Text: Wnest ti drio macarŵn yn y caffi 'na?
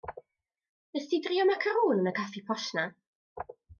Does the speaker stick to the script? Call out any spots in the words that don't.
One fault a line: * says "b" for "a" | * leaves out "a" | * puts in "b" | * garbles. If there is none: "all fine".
* puts in "posh"